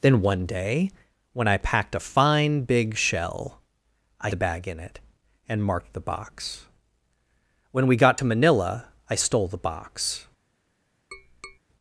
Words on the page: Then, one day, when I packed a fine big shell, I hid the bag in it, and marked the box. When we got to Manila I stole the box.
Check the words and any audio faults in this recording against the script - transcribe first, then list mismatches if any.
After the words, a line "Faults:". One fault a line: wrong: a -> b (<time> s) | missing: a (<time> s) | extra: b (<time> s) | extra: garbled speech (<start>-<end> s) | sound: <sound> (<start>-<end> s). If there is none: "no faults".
Then, one day, when I packed a fine big shell, I the bag in it, and marked the box. When we got to Manila I stole the box.
Faults:
missing: hid (4.3 s)
sound: tap (11.1-11.6 s)